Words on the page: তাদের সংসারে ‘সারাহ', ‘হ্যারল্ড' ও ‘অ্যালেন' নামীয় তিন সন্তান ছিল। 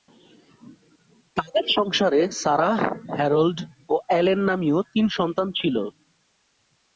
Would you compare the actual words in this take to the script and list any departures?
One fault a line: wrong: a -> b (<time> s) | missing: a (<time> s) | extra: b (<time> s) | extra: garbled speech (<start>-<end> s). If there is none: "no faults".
no faults